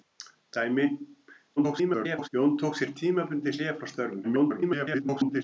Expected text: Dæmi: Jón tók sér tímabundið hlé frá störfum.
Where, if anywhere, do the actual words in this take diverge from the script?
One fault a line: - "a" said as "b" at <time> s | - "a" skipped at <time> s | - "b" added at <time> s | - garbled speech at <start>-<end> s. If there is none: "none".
- garbled speech at 1.6-2.3 s
- garbled speech at 4.2-5.4 s